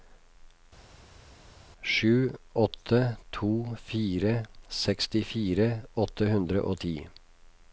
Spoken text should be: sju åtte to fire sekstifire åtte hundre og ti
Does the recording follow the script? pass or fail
pass